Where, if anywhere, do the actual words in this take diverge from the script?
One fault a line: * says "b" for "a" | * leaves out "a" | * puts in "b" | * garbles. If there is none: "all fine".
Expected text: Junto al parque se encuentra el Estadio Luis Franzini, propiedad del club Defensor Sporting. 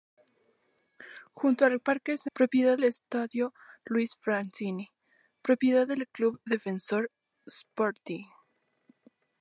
* says "propiedad" for "encuentra"